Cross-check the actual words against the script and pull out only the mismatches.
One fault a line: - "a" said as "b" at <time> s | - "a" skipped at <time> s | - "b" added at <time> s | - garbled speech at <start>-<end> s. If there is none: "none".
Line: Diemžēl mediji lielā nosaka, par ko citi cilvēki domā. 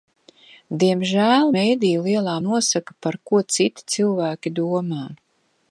none